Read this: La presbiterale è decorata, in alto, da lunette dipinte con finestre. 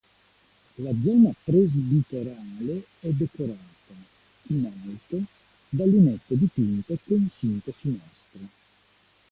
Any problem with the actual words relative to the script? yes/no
yes